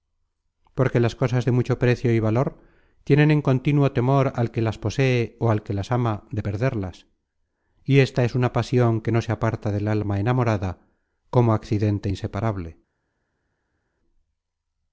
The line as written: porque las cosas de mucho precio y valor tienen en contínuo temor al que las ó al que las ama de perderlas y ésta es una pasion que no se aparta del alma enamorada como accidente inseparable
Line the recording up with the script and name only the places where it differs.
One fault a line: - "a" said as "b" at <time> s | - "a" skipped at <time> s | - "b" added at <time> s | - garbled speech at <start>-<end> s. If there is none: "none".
- "posee" added at 4.8 s